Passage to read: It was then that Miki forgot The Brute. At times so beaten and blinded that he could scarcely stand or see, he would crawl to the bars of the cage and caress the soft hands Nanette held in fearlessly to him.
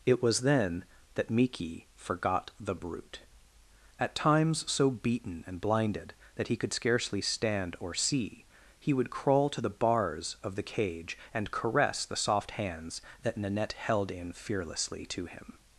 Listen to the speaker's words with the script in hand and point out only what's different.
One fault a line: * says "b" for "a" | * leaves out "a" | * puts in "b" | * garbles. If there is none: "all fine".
* puts in "that"